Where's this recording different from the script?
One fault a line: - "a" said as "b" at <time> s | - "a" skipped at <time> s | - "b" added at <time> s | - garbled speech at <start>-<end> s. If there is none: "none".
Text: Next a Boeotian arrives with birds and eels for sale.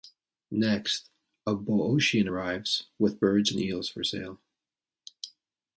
none